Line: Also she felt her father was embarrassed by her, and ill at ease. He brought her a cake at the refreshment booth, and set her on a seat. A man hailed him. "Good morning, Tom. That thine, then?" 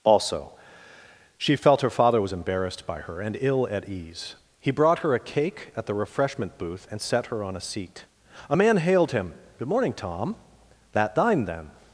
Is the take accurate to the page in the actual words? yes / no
yes